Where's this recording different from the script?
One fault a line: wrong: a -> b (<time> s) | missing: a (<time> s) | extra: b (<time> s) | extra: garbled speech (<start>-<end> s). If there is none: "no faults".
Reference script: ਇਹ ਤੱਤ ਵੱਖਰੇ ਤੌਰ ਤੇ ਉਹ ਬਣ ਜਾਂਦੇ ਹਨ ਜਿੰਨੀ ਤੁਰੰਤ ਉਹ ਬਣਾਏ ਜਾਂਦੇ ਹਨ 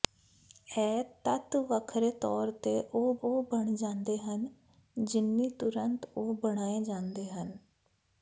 extra: ਉਹ (3.2 s)